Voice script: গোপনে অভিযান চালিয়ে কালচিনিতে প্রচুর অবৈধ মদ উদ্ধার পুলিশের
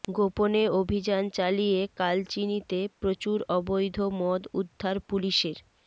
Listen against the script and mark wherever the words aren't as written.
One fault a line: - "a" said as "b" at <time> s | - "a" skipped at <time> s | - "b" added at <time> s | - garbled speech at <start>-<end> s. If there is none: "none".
none